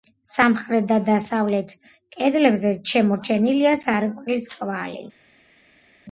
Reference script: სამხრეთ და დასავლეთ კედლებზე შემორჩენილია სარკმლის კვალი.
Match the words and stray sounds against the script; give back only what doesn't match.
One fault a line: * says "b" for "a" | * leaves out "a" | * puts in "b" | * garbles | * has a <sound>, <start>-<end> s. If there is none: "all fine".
all fine